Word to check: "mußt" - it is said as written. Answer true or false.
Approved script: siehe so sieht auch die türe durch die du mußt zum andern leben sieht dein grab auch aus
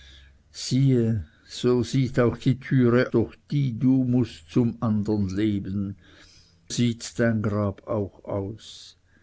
true